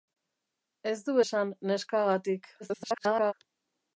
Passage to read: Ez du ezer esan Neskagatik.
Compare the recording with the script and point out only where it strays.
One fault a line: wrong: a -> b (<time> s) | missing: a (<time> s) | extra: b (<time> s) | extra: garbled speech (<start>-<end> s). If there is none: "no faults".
missing: ezer (1.1 s)
extra: garbled speech (2.6-3.3 s)